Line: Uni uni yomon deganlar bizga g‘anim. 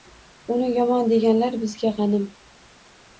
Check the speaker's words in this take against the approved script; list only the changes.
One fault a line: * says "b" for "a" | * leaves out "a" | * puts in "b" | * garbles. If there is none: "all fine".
* leaves out "uni"